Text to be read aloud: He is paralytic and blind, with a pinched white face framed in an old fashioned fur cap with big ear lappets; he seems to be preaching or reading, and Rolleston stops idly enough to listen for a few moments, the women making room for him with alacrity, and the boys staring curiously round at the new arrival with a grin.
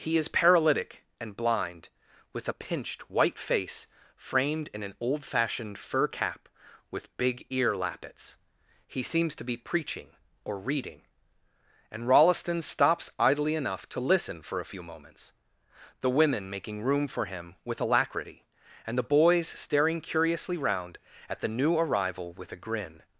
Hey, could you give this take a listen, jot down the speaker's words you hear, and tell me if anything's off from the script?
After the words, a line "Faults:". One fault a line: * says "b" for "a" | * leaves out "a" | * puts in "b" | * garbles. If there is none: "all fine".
He is paralytic and blind, with a pinched white face framed in an old fashioned fur cap with big ear lappets; he seems to be preaching or reading, and Rolleston stops idly enough to listen for a few moments, the women making room for him with alacrity, and the boys staring curiously round at the new arrival with a grin.
Faults:
all fine